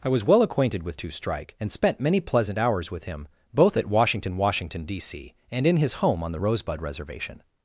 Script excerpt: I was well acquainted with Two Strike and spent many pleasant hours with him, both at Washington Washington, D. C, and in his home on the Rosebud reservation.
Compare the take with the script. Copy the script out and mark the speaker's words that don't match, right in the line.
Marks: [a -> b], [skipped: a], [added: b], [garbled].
I was well acquainted with Two Strike and spent many pleasant hours with him, both at Washington Washington, D. C, and in his home on the Rosebud reservation.